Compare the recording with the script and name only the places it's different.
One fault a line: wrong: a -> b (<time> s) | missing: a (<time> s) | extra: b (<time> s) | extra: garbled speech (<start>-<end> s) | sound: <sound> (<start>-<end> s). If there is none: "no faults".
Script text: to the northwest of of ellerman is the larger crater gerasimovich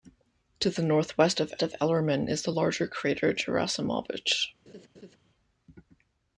sound: laugh (4.7-5.2 s)